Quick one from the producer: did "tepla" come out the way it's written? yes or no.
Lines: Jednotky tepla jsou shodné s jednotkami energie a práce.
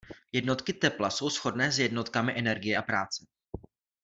yes